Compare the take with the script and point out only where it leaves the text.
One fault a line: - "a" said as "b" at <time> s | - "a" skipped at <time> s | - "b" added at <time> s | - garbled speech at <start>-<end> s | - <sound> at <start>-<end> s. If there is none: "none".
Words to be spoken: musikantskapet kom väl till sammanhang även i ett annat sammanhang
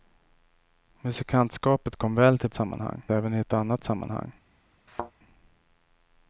- thud at 4.9-5.1 s